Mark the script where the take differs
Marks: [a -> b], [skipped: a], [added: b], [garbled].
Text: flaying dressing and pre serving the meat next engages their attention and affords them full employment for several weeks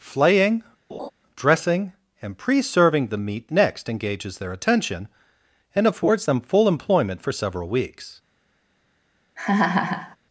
flaying dressing and pre serving the meat next engages their attention and affords them full employment for several weeks